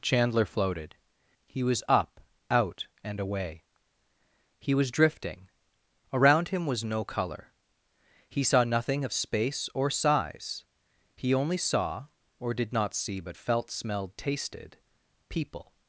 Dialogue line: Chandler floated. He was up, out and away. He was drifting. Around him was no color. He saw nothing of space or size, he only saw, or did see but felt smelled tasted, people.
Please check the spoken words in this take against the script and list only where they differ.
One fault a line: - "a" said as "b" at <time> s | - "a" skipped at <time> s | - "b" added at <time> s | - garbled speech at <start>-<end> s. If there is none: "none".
- "not" added at 12.7 s